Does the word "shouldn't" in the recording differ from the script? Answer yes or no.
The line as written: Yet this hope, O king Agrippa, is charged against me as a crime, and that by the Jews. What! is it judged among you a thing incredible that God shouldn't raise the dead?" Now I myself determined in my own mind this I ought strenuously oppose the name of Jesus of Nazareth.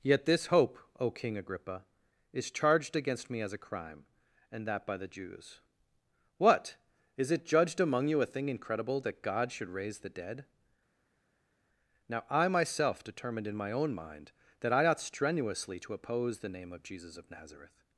yes